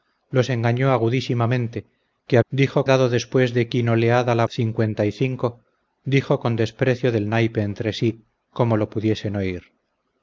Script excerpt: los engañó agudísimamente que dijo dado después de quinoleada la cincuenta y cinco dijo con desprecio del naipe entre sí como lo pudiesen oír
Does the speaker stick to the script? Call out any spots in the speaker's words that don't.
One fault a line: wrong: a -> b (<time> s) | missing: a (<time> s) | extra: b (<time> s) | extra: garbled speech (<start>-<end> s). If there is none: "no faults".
no faults